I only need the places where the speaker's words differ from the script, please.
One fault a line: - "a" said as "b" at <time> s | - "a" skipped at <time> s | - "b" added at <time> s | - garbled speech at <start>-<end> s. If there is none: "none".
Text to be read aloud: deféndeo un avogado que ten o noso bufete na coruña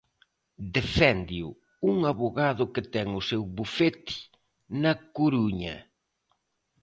- "noso" said as "seu" at 3.3 s